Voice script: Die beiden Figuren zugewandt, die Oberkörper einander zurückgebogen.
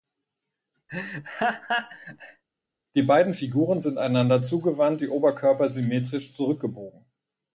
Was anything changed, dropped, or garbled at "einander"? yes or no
yes